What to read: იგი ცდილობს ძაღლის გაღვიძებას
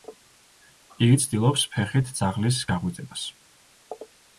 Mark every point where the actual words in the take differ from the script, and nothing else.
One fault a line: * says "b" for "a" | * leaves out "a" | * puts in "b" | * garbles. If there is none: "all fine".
* puts in "ფეხით"